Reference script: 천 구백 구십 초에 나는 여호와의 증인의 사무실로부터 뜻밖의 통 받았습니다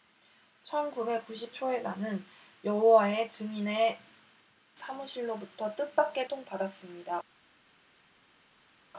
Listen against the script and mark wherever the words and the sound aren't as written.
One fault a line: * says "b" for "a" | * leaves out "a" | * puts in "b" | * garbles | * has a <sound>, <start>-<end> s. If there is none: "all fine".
all fine